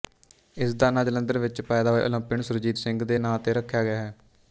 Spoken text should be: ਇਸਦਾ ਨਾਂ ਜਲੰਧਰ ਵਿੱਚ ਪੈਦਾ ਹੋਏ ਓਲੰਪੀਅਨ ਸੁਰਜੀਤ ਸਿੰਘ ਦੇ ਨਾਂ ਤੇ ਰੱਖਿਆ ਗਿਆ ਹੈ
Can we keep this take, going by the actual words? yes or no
yes